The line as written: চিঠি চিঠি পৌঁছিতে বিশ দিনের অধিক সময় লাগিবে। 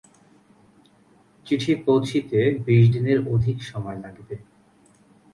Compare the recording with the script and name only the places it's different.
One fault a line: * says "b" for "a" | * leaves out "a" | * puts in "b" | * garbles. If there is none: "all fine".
* leaves out "চিঠি"